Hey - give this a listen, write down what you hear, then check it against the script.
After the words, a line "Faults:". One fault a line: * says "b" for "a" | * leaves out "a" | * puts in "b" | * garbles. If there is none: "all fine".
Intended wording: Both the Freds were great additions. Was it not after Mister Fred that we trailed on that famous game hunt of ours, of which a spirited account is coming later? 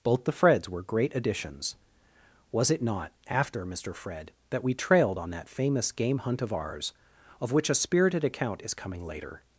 Both the Freds were great additions. Was it not after Mister Fred that we trailed on that famous game hunt of ours, of which a spirited account is coming later?
Faults:
all fine